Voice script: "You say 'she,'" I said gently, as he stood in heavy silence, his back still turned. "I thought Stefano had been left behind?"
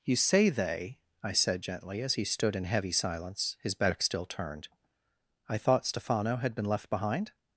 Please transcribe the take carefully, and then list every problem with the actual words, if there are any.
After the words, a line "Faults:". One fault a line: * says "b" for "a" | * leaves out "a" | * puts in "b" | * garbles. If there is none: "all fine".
"You say 'they,'" I said gently, as he stood in heavy silence, his back still turned. "I thought Stefano had been left behind?"
Faults:
* says "they" for "she"